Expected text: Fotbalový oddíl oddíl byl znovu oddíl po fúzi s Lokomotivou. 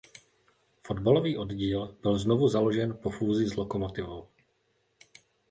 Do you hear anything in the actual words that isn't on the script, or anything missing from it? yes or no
yes